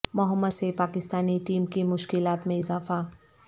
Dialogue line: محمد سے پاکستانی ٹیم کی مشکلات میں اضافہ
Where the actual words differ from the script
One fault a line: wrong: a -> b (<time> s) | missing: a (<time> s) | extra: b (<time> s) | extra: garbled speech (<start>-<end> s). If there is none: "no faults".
no faults